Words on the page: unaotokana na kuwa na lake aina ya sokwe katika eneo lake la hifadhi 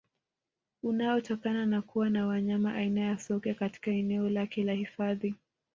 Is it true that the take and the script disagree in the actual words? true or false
true